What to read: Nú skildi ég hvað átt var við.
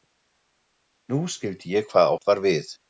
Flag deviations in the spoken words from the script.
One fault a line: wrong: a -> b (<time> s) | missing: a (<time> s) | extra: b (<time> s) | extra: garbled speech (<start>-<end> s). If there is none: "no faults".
no faults